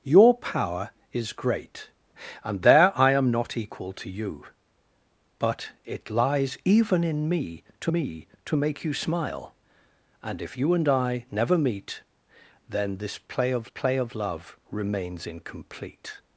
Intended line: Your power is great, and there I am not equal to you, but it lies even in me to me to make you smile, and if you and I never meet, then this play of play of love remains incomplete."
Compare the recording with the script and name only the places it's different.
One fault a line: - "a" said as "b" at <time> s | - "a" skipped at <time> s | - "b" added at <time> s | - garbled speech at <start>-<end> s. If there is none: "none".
none